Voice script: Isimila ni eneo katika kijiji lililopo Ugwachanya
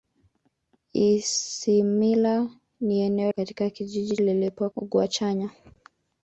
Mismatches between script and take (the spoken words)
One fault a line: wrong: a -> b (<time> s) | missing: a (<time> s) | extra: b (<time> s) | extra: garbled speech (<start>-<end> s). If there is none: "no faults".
no faults